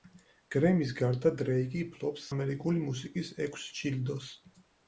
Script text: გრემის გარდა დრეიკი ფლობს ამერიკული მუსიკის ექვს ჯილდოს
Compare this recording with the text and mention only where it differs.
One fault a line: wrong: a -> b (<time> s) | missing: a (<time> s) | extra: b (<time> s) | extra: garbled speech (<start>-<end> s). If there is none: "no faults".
no faults